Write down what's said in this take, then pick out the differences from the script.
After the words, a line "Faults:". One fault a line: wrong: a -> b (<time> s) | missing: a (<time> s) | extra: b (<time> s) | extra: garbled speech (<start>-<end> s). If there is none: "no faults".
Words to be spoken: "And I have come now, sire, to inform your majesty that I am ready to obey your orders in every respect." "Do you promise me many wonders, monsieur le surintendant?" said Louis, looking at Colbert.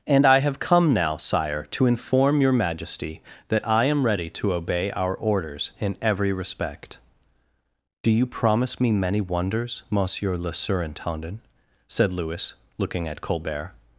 "And I have come now, sire, to inform your majesty that I am ready to obey our orders in every respect." "Do you promise me many wonders, monsieur le surintendant?" said Louis, looking at Colbert.
Faults:
wrong: your -> our (4.9 s)